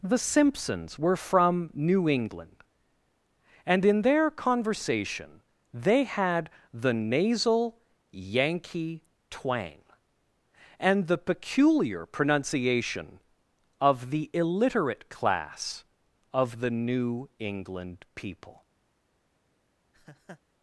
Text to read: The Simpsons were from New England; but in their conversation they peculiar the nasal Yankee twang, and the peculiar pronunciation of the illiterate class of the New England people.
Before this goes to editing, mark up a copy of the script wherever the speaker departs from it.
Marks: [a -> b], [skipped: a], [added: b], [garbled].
The Simpsons were from New England; [but -> and] in their conversation they [peculiar -> had] the nasal Yankee twang, and the peculiar pronunciation of the illiterate class of the New England people.